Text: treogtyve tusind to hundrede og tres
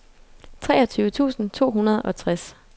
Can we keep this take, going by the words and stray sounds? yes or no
yes